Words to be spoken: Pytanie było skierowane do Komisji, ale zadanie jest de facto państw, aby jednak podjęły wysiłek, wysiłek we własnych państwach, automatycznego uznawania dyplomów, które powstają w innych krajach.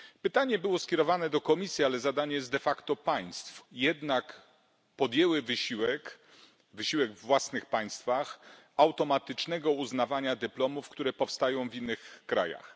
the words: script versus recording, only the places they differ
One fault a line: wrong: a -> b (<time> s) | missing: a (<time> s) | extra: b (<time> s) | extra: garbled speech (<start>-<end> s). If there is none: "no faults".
missing: aby (3.6 s)